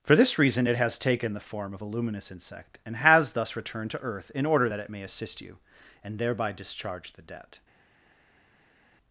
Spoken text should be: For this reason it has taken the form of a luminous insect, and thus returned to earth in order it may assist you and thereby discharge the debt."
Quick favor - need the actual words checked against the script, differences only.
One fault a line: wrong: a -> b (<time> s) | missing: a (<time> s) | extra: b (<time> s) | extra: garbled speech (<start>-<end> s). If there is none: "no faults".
extra: has (3.0 s)
extra: that (4.7 s)